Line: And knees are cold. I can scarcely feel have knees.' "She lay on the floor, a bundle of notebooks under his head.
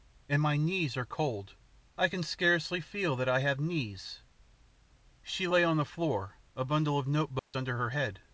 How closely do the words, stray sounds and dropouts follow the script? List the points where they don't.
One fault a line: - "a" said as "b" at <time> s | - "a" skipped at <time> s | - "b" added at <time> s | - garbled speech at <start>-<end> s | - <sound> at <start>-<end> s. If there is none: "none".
- "my" added at 0.4 s
- "that I" added at 3.2 s
- dropout at 7.4-7.5 s
- "his" said as "her" at 7.8 s